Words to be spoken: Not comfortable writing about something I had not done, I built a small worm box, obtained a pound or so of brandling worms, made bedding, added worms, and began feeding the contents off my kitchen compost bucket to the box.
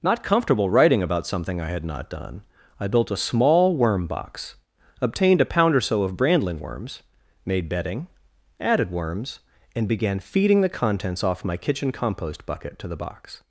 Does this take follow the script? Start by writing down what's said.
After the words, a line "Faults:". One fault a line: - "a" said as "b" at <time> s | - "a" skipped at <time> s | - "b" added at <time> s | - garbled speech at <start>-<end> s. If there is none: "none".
Not comfortable writing about something I had not done, I built a small worm box, obtained a pound or so of brandling worms, made bedding, added worms, and began feeding the contents off my kitchen compost bucket to the box.
Faults:
none